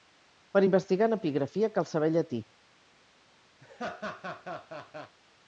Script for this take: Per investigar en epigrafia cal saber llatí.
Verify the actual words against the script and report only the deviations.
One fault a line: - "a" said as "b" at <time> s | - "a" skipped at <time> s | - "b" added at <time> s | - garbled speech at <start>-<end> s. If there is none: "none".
none